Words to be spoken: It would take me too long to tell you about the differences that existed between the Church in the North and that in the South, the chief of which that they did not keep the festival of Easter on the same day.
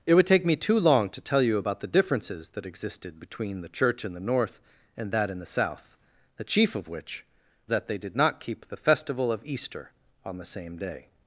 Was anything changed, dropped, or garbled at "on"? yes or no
no